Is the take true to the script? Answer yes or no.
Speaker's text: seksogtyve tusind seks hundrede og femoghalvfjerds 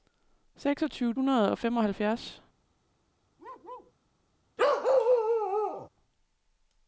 no